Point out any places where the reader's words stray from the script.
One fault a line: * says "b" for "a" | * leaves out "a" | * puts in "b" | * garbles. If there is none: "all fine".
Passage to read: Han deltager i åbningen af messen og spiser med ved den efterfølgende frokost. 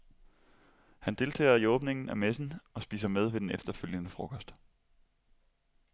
all fine